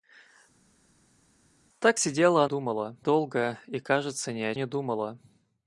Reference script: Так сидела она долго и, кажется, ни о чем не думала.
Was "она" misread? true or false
true